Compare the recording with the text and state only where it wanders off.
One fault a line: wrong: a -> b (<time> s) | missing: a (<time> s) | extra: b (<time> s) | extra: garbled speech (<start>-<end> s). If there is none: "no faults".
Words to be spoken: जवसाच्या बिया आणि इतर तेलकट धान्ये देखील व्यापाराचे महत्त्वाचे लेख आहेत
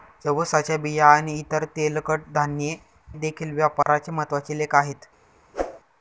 no faults